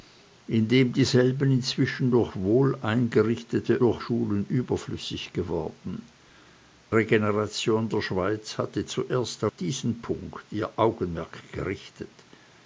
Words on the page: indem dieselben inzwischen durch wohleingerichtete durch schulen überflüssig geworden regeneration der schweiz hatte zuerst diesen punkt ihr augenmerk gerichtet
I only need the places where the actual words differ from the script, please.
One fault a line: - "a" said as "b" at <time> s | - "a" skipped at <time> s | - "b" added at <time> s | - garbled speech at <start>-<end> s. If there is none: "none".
none